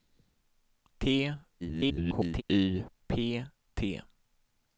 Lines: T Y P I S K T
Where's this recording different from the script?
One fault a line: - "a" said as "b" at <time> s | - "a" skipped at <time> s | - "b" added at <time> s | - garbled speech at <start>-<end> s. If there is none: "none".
- garbled speech at 1.6-2.4 s
- "I S K" skipped at 3.4 s